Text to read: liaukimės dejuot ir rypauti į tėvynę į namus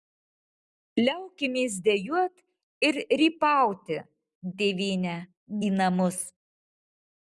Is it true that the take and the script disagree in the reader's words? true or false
false